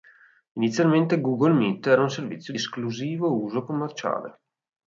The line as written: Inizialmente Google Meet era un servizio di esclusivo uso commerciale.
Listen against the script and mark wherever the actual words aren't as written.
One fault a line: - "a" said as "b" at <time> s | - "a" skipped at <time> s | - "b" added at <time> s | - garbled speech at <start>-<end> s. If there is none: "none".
none